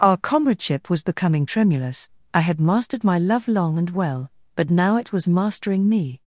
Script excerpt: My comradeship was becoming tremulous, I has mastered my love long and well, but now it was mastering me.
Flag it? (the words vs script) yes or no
yes